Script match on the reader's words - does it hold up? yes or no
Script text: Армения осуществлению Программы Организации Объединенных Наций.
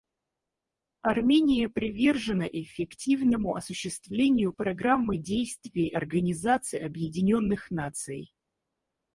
no